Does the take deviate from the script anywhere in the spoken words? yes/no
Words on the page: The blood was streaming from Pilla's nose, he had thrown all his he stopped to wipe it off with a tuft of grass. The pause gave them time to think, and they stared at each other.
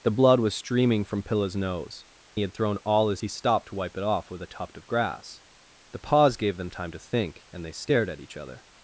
no